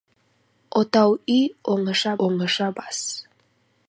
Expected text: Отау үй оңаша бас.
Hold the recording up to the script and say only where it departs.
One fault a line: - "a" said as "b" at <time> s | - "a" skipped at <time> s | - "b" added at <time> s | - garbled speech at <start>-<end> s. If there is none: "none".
- "оңаша" added at 2.3 s